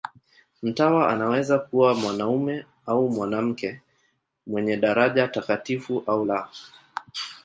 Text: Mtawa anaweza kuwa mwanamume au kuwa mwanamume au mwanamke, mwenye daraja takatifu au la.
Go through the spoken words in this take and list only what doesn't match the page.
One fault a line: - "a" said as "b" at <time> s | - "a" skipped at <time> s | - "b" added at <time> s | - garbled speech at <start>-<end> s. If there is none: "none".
- "kuwa mwanamume au" skipped at 3.1 s